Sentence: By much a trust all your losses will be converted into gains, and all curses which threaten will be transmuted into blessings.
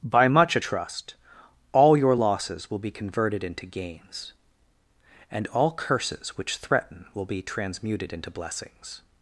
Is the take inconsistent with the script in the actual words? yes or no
no